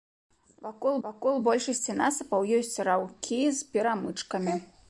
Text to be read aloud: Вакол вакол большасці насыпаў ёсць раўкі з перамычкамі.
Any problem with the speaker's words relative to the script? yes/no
no